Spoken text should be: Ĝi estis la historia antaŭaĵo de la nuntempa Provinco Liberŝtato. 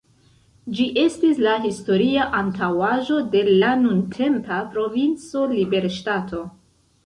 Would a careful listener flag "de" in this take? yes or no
no